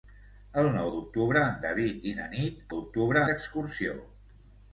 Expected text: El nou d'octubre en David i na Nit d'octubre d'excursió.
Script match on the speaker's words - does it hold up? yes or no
yes